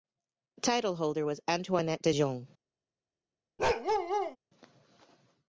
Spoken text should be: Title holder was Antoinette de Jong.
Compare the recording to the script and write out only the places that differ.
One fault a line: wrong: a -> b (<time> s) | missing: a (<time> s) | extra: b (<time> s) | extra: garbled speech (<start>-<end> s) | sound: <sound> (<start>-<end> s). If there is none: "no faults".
sound: bark (3.6-4.4 s)